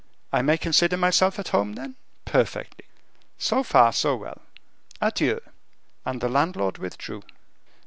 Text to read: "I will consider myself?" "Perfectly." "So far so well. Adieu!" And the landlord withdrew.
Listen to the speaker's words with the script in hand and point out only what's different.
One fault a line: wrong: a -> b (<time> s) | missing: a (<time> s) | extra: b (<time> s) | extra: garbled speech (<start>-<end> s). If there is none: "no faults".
wrong: will -> may (0.4 s)
extra: at home then (1.4 s)